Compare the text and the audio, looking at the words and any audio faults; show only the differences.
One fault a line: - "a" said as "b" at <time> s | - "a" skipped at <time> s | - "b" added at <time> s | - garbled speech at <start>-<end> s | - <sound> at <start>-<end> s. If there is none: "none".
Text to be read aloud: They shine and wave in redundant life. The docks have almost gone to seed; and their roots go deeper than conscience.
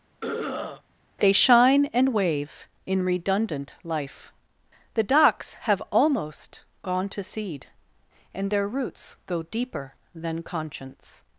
- throat clearing at 0.2-0.8 s